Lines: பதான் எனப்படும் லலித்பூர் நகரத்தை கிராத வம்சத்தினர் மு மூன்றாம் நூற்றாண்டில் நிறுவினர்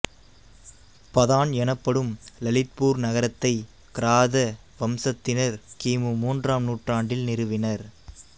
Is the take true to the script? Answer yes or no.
no